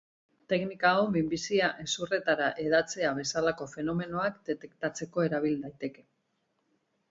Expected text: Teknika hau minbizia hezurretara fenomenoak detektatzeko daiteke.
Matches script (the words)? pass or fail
fail